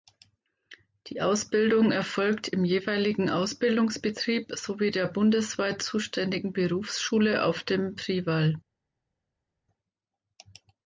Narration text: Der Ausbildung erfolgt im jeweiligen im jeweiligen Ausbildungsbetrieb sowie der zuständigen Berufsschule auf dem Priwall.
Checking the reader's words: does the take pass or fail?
fail